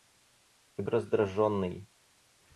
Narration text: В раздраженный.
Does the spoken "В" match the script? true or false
true